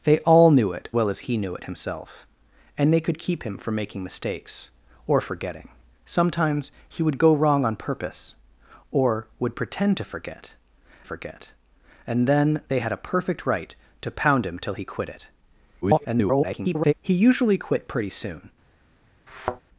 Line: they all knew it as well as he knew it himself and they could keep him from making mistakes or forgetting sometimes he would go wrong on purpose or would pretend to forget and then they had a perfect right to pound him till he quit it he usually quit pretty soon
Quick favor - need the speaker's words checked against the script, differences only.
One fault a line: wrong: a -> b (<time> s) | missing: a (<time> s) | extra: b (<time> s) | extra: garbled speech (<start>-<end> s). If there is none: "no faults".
missing: as (0.9 s)
extra: forget (11.0 s)
extra: garbled speech (15.8-16.9 s)